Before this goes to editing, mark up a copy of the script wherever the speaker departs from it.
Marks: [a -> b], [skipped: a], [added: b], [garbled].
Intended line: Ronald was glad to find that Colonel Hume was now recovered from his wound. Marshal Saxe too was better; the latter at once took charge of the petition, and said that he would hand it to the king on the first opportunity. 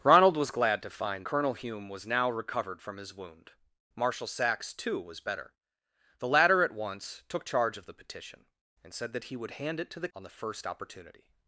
Ronald was glad to find [skipped: that] Colonel Hume was now recovered from his wound. Marshal Saxe too was better; the latter at once took charge of the petition, and said that he would hand it to the [skipped: king] on the first opportunity.